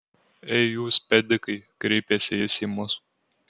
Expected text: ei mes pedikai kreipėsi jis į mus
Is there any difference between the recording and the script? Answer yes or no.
yes